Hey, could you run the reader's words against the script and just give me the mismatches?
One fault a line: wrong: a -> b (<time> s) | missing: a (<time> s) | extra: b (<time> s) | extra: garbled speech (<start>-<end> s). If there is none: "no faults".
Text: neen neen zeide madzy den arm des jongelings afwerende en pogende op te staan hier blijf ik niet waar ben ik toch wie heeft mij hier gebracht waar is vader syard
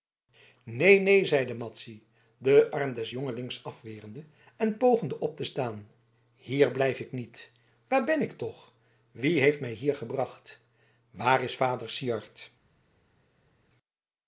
no faults